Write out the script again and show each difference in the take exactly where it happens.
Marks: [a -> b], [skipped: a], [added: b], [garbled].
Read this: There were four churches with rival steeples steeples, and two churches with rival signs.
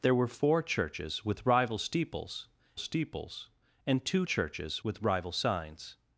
There were four churches with rival steeples steeples, and two churches with rival signs.